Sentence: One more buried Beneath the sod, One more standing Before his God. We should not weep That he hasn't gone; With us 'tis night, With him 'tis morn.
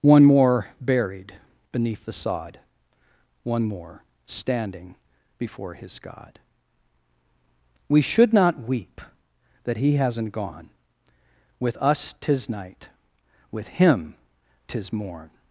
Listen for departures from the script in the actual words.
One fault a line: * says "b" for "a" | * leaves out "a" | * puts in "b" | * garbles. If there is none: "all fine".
all fine